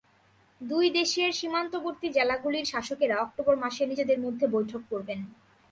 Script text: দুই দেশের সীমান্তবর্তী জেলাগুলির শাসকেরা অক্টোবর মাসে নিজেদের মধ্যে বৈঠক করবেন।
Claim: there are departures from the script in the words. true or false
false